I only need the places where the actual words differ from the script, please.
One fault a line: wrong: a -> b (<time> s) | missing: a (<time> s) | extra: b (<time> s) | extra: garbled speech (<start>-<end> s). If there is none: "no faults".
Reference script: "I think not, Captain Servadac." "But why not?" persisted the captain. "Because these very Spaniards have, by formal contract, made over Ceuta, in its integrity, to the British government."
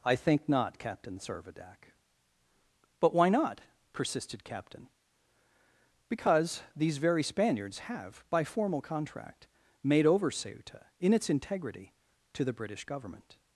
missing: the (4.4 s)